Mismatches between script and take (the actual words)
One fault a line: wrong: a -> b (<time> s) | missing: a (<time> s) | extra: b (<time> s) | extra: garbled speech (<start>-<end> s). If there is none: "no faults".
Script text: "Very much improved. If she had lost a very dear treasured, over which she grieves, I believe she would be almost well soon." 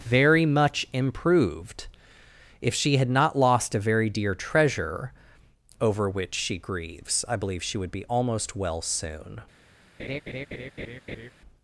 extra: not (3.1 s)
wrong: treasured -> treasure (4.3 s)